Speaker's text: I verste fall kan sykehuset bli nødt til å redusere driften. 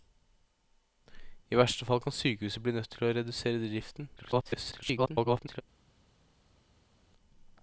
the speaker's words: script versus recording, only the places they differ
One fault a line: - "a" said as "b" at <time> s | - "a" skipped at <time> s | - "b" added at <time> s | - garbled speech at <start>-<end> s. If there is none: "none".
- garbled speech at 4.2-5.6 s